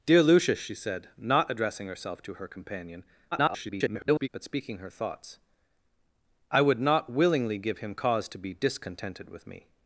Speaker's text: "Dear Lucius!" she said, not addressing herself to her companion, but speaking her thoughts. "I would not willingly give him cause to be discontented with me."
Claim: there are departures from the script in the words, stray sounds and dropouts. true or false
true